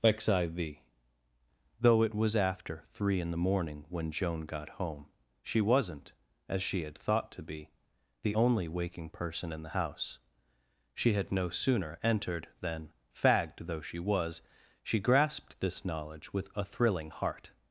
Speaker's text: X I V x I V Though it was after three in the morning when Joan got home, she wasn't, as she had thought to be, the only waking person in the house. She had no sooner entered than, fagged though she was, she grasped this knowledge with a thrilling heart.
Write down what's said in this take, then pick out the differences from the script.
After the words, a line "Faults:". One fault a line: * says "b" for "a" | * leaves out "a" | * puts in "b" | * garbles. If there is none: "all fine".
X I V Though it was after three in the morning when Joan got home, she wasn't, as she had thought to be, the only waking person in the house. She had no sooner entered than, fagged though she was, she grasped this knowledge with a thrilling heart.
Faults:
* leaves out "x I V"